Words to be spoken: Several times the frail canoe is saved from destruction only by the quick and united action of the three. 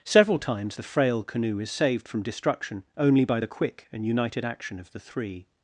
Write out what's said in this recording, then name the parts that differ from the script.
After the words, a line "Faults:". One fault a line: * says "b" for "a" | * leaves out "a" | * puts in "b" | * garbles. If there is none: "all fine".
Several times the frail canoe is saved from destruction only by the quick and united action of the three.
Faults:
all fine